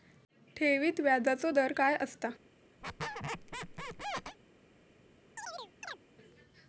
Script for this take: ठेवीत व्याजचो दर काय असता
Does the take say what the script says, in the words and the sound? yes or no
no